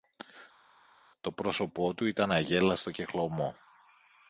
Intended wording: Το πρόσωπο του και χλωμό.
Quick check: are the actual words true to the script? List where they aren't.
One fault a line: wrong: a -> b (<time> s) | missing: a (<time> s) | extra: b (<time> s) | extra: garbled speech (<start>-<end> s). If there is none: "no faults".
extra: ήταν αγέλαστο (2.0 s)